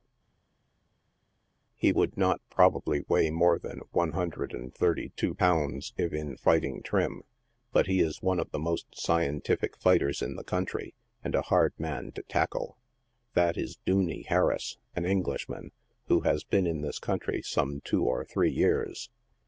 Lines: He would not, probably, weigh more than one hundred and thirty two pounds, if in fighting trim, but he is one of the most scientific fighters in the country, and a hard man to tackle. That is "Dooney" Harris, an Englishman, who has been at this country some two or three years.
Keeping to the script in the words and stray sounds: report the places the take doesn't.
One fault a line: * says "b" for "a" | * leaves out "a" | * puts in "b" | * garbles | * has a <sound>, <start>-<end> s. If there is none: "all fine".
* says "in" for "at"